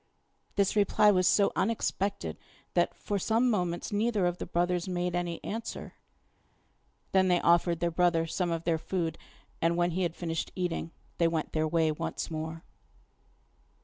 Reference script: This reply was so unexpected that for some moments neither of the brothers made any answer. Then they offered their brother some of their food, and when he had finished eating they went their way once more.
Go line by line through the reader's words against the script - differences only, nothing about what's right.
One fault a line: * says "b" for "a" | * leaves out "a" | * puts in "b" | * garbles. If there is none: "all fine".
all fine